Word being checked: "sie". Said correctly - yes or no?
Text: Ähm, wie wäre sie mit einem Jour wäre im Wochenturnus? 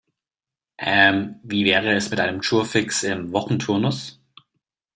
no